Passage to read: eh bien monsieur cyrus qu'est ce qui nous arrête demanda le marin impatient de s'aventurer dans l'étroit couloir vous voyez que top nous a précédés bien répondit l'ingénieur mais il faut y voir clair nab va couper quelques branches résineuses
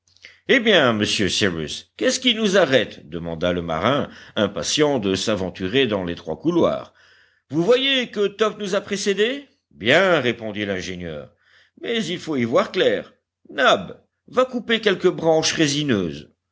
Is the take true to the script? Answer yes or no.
yes